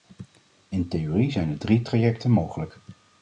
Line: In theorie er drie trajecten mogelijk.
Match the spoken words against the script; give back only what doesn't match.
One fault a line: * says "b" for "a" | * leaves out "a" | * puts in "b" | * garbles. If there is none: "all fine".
* puts in "zijn"